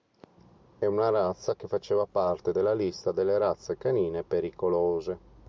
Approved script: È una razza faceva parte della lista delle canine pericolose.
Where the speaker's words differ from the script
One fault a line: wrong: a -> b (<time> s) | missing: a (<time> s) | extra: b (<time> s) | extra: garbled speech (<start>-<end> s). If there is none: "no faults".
extra: che (1.6 s)
extra: razze (3.4 s)